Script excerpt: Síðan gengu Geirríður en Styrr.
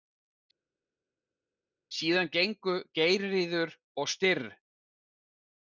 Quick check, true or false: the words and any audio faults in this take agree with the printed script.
false